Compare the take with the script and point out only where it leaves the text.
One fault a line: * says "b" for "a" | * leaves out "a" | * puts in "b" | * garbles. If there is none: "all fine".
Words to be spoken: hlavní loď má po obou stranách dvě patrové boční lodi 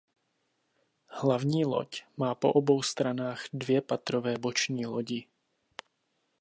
all fine